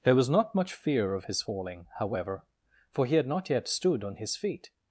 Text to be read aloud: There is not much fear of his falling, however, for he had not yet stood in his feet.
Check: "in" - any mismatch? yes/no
yes